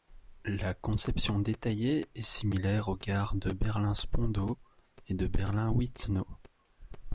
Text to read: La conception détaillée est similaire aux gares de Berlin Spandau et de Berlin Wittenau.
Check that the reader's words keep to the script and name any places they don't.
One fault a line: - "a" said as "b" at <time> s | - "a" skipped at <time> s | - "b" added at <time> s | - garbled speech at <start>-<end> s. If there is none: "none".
none